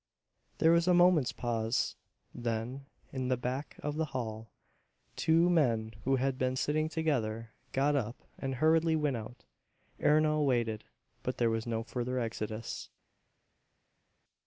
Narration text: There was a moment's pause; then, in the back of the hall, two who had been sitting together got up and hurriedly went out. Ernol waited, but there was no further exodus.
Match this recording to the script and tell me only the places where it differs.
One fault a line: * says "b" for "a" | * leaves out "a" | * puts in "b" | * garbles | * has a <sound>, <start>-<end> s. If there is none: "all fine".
* puts in "men"